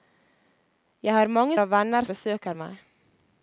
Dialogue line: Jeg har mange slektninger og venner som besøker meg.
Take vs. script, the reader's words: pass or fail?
fail